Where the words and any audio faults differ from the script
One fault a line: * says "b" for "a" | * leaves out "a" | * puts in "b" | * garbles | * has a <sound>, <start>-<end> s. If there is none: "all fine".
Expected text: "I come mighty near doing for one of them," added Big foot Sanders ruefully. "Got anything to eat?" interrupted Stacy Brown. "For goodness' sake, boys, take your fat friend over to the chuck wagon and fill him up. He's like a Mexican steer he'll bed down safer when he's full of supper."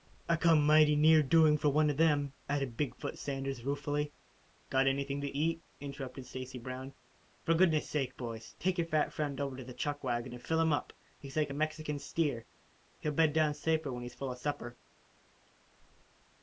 all fine